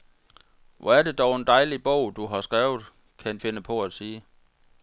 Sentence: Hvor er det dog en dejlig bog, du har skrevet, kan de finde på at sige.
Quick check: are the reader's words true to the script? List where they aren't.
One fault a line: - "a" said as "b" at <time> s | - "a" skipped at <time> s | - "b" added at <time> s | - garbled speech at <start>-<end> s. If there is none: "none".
- "de" skipped at 3.4 s